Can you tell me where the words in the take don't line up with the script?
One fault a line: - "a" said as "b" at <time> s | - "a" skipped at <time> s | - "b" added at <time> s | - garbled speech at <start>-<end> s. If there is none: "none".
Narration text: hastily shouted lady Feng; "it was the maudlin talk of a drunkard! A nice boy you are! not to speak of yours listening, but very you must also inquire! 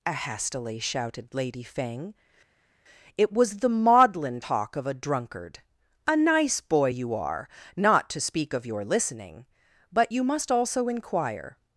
- "yours" said as "your" at 8.7 s
- "very" skipped at 10.1 s